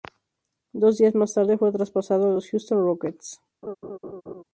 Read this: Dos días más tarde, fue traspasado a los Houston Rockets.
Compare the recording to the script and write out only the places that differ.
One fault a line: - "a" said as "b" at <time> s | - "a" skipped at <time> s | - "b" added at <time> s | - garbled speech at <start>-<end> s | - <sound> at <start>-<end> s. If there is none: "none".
- laugh at 3.6-4.4 s